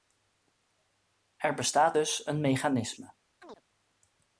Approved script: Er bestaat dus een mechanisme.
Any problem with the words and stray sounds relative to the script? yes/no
yes